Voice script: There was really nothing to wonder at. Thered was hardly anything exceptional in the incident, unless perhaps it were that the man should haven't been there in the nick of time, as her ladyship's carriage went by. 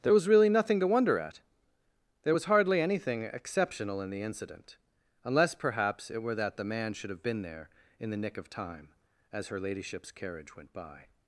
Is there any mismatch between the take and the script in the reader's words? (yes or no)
yes